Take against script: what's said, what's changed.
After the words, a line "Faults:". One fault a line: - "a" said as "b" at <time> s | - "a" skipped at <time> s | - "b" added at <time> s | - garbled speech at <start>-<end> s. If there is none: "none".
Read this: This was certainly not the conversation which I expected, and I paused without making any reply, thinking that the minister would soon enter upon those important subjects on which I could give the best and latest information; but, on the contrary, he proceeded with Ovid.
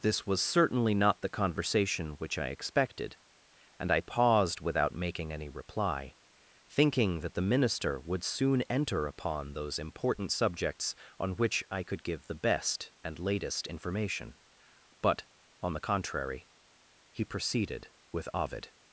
This was certainly not the conversation which I expected, and I paused without making any reply, thinking that the minister would soon enter upon those important subjects on which I could give the best and latest information; but, on the contrary, he proceeded with Ovid.
Faults:
none